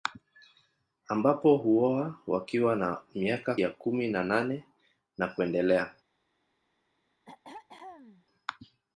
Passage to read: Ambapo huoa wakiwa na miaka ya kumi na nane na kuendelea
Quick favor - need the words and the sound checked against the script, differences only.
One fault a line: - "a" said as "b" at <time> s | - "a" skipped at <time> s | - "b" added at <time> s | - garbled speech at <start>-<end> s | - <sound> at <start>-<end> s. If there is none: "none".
- throat clearing at 7.3-8.2 s